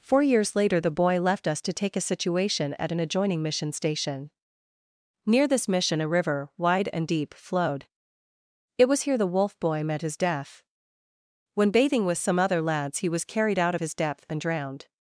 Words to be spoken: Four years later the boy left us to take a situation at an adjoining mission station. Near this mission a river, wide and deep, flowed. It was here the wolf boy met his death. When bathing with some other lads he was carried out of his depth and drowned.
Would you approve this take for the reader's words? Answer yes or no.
yes